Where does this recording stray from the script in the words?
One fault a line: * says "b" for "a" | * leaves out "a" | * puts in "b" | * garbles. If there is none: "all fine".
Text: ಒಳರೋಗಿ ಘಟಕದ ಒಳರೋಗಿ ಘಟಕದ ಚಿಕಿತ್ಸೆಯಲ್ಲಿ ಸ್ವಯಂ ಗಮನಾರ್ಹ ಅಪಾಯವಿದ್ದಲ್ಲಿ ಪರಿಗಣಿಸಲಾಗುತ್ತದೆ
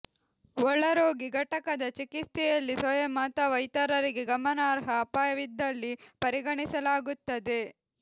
* says "ಚಿಕಿತ್ಸೆಯಲ್ಲಿ ಸ್ವಯಂ ಅಥವಾ ಇತರರಿಗೆ" for "ಒಳರೋಗಿ ಘಟಕದ ಚಿಕಿತ್ಸೆಯಲ್ಲಿ ಸ್ವಯಂ"